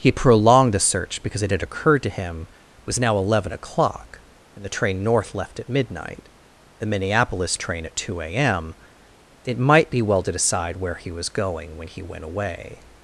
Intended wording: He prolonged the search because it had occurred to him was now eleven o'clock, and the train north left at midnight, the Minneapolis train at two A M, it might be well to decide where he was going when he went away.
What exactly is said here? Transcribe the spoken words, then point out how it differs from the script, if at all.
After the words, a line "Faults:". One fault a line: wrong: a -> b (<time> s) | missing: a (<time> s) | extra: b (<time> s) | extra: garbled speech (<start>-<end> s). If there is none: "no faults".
He prolonged the search because it had occurred to him was now eleven o'clock, and the train north left at midnight, the Minneapolis train at two A M, it might be well to decide where he was going when he went away.
Faults:
no faults